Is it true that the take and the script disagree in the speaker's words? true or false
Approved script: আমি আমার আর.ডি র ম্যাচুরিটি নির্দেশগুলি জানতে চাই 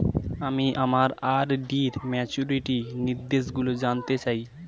false